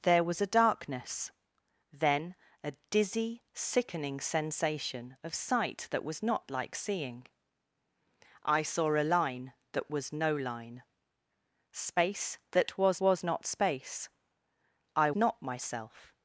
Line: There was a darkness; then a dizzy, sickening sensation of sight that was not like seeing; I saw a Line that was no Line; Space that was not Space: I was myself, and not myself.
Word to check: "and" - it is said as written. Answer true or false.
false